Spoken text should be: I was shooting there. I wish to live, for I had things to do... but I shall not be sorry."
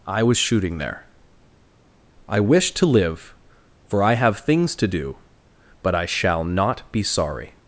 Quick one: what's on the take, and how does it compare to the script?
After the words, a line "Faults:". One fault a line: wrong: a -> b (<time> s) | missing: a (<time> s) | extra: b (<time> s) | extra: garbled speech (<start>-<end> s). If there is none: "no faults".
I was shooting there. I wish to live, for I have things to do... but I shall not be sorry."
Faults:
wrong: had -> have (4.1 s)